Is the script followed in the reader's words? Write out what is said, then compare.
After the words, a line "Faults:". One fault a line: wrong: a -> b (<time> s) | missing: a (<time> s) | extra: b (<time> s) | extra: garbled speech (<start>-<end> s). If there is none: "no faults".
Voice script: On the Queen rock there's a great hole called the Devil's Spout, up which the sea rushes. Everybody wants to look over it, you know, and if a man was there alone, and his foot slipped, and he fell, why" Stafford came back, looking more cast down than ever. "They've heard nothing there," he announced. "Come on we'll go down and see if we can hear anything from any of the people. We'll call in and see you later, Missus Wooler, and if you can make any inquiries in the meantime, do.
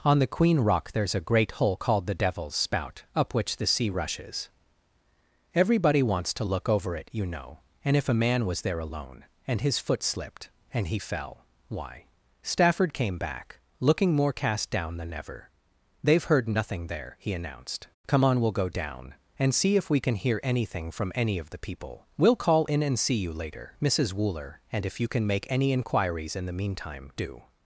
On the Queen rock there's a great hole called the Devil's Spout, up which the sea rushes. Everybody wants to look over it, you know, and if a man was there alone, and his foot slipped, and he fell, why" Stafford came back, looking more cast down than ever. "They've heard nothing there," he announced. "Come on we'll go down and see if we can hear anything from any of the people. We'll call in and see you later, Missus Wooler, and if you can make any inquiries in the meantime, do.
Faults:
no faults